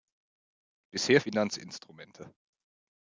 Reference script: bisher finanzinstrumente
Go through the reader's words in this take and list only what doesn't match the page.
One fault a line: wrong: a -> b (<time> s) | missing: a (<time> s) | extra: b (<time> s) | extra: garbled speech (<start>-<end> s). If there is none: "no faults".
no faults